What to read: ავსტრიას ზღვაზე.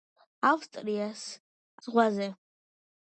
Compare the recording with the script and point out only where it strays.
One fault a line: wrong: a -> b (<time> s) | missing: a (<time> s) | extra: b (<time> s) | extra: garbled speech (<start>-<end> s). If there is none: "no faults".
no faults